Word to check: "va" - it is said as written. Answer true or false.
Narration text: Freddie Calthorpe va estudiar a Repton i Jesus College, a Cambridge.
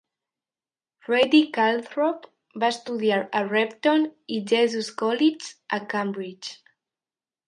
true